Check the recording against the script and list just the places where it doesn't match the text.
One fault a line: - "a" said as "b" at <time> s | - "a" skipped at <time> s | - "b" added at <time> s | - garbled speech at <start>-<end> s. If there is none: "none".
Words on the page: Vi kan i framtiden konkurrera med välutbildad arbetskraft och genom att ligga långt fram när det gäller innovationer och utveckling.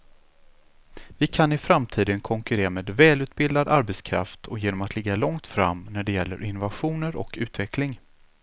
none